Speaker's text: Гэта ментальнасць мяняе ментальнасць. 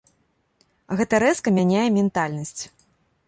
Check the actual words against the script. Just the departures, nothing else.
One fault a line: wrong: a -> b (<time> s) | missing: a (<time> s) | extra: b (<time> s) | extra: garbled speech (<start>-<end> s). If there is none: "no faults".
wrong: ментальнасць -> рэзка (1.2 s)